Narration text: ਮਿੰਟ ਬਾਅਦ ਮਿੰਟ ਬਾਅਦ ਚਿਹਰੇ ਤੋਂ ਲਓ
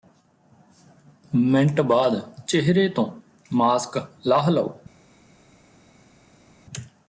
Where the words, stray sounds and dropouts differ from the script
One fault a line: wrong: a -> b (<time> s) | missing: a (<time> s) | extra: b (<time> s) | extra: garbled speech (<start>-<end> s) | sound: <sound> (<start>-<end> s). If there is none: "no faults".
wrong: ਮਿੰਟ ਬਾਅਦ ਚਿਹਰੇ ਤੋਂ -> ਚਿਹਰੇ ਤੋਂ ਮਾਸਕ ਲਾਹ (2.5 s)